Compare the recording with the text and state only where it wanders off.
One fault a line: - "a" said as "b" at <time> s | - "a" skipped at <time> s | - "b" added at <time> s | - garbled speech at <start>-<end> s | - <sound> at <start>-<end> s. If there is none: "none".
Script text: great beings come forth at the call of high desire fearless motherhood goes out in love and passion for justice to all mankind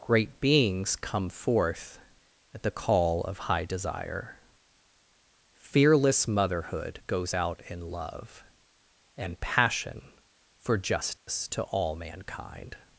- dropout at 11.2-11.3 s